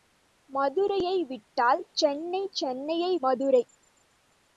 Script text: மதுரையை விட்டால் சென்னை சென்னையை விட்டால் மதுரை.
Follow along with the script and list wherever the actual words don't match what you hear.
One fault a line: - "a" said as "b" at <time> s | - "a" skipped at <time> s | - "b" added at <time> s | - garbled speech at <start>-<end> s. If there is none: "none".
- "விட்டால்" skipped at 3.1 s